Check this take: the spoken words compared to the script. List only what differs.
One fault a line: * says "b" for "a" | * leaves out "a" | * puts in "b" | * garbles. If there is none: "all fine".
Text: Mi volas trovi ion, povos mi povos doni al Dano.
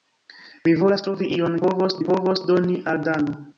all fine